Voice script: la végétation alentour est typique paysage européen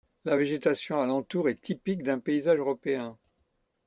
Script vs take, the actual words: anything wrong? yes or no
yes